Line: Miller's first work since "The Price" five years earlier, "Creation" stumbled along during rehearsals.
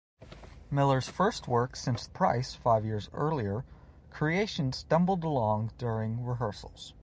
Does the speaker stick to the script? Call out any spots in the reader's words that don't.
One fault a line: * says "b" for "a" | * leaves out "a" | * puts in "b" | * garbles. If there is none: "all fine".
* leaves out "The"